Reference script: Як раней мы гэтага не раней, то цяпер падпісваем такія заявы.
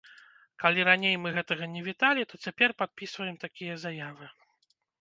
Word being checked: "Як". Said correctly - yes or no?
no